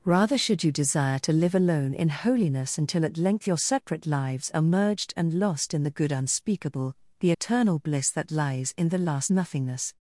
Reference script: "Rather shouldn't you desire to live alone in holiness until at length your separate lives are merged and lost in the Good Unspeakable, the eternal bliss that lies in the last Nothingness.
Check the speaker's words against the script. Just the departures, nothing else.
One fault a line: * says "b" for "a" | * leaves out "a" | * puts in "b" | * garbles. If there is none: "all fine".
* says "should" for "shouldn't"